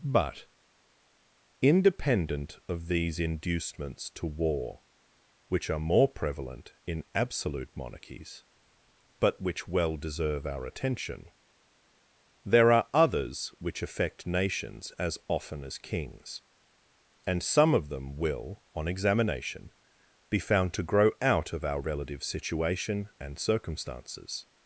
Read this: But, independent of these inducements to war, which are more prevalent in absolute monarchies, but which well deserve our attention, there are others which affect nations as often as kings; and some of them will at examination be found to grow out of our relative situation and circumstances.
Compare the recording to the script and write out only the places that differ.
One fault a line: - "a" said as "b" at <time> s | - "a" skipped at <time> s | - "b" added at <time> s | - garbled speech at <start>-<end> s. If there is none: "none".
- "at" said as "on" at 18.7 s